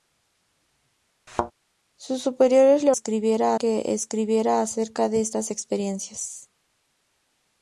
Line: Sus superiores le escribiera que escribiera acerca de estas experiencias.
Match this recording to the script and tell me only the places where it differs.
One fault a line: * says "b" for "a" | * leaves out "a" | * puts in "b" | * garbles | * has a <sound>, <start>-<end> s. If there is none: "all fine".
* has a thud, 1.3-1.5 s